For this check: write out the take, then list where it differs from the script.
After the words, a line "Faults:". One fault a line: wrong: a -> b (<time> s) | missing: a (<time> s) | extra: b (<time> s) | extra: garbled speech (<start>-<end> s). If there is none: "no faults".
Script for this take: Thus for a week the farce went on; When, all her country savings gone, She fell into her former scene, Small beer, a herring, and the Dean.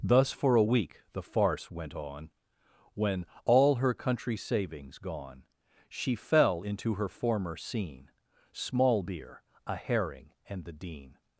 Thus for a week the farce went on; When, all her country savings gone, She fell into her former scene, Small beer, a herring, and the Dean.
Faults:
no faults